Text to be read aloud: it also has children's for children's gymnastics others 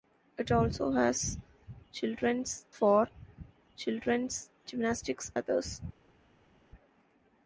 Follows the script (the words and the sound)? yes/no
yes